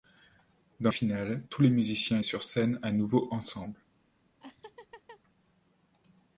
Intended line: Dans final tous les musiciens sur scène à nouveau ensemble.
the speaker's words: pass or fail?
pass